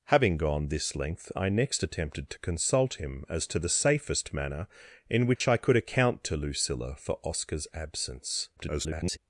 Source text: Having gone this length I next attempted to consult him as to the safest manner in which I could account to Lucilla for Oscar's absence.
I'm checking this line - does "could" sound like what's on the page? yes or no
yes